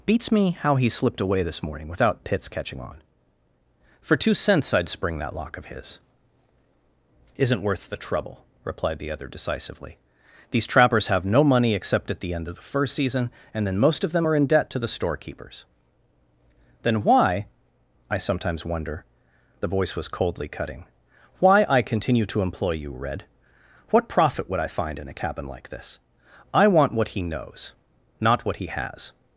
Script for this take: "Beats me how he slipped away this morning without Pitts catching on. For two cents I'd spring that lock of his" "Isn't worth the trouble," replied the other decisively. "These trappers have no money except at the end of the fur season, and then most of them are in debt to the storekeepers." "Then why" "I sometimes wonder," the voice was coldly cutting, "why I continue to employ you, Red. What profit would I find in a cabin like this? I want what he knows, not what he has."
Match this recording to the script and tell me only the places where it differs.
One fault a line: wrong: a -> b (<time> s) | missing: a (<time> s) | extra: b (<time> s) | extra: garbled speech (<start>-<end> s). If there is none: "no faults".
wrong: fur -> first (12.6 s)